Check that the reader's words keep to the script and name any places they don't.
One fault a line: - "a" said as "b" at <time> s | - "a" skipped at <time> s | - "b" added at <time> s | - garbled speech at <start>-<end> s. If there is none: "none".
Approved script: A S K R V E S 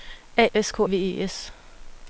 none